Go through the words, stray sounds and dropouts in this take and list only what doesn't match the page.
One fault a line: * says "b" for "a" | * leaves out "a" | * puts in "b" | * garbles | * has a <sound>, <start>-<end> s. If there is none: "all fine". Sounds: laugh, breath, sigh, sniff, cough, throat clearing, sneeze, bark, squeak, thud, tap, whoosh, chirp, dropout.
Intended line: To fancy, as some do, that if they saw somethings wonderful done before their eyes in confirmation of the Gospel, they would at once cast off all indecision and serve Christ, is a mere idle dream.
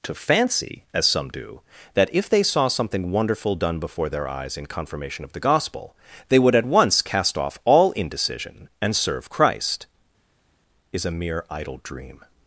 * says "something" for "somethings"